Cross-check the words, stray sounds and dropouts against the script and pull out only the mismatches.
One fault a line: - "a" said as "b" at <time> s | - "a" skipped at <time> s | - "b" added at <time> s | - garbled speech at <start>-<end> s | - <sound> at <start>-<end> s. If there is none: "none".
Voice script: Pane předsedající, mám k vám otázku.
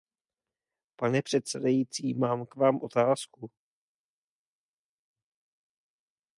none